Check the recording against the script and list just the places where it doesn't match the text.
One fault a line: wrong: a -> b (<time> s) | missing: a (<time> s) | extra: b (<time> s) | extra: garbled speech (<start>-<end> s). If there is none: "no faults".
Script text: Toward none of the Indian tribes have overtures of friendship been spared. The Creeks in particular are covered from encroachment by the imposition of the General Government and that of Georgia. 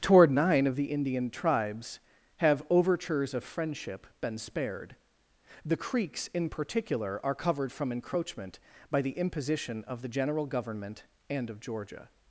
wrong: none -> nine (0.3 s)
missing: that (11.5 s)